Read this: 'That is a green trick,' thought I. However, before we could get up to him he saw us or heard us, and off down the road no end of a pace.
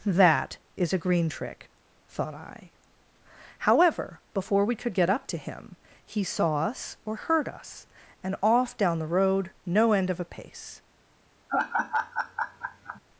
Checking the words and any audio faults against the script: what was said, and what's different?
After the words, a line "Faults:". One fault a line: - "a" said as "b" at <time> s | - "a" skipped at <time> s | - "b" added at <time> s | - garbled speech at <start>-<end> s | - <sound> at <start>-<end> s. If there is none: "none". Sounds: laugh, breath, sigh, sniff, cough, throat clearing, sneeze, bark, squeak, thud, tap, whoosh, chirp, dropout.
'That is a green trick,' thought I. However, before we could get up to him he saw us or heard us, and off down the road no end of a pace.
Faults:
- laugh at 11.5-13.0 s